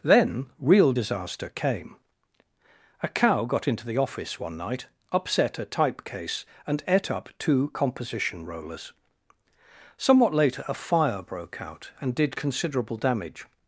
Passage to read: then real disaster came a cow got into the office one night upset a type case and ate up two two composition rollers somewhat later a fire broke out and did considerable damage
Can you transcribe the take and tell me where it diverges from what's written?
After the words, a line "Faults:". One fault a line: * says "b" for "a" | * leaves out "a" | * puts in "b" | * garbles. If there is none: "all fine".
then real disaster came a cow got into the office one night upset a type case and ate up two composition rollers somewhat later a fire broke out and did considerable damage
Faults:
* leaves out "two"